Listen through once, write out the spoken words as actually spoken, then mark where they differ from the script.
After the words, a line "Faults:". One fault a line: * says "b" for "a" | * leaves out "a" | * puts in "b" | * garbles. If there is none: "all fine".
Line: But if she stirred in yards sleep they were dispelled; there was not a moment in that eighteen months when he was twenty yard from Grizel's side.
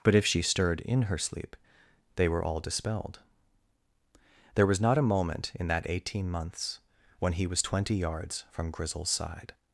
But if she stirred in her sleep they were all dispelled; there was not a moment in that eighteen months when he was twenty yards from Grizel's side.
Faults:
* says "her" for "yards"
* puts in "all"
* says "yards" for "yard"